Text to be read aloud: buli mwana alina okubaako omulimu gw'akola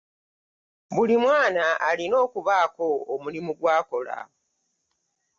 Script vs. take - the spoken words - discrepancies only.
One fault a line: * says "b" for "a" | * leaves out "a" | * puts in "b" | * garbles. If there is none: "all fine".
all fine